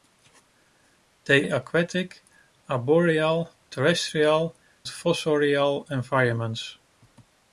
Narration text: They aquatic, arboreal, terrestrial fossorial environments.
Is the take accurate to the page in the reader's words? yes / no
yes